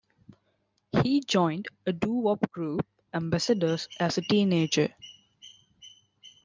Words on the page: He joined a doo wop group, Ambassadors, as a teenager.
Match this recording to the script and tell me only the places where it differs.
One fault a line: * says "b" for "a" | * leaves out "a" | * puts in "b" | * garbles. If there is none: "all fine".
all fine